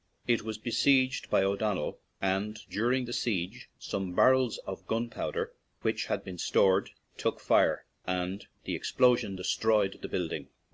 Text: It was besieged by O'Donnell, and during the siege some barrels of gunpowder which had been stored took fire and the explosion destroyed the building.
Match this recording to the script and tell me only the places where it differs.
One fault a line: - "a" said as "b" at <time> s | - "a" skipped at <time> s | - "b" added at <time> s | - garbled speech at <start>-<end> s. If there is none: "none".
none